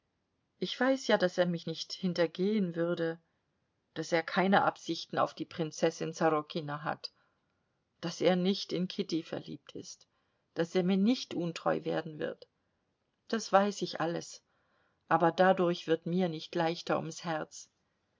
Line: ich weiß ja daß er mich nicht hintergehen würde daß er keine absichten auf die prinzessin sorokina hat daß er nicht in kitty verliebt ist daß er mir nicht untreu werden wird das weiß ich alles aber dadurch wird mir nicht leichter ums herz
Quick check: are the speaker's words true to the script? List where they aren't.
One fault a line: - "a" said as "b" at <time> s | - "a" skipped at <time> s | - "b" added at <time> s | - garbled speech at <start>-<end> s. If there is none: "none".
none